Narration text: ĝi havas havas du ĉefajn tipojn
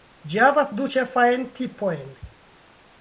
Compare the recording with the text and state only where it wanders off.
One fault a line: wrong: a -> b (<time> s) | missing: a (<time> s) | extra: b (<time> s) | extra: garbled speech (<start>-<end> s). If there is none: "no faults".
missing: havas (0.7 s)